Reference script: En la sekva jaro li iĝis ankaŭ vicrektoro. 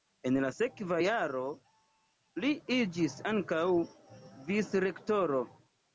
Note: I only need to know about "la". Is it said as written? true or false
true